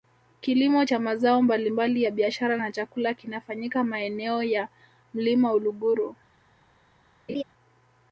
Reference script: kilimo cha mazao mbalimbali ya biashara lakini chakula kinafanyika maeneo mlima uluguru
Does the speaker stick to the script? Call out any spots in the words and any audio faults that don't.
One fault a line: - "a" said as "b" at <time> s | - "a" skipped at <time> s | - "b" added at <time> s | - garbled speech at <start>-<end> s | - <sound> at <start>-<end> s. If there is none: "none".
- "lakini" said as "na" at 2.5 s
- "ya" added at 4.4 s
- laugh at 7.3-7.4 s